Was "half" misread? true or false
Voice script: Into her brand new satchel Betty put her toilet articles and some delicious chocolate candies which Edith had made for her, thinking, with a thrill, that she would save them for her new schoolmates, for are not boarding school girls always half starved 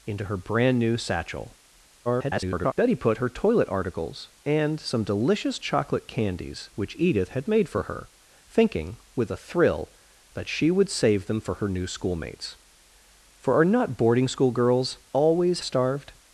true